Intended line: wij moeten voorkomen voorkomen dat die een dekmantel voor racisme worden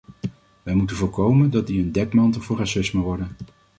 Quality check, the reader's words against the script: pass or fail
fail